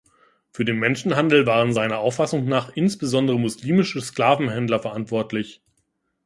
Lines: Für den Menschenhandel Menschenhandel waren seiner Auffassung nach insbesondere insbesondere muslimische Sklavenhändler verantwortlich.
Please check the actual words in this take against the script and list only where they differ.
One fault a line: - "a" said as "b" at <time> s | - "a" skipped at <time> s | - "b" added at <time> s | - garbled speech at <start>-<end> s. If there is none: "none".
- "Menschenhandel" skipped at 1.5 s
- "insbesondere" skipped at 3.4 s